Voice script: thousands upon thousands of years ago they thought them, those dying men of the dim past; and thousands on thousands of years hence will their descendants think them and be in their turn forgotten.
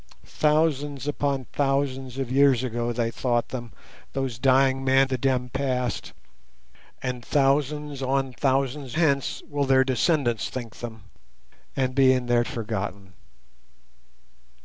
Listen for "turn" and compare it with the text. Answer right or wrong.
wrong